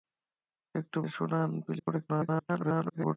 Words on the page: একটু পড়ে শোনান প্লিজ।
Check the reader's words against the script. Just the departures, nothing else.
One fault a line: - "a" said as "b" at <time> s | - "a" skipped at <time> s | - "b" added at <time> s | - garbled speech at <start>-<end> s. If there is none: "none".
- "পড়ে" skipped at 1.0 s
- garbled speech at 1.8-3.2 s